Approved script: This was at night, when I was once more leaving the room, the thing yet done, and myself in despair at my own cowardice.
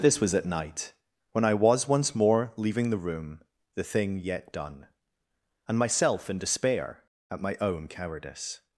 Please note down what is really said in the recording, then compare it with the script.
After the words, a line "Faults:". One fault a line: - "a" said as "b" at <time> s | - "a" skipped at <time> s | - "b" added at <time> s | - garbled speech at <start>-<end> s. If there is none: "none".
This was at night, when I was once more leaving the room, the thing yet done, and myself in despair at my own cowardice.
Faults:
none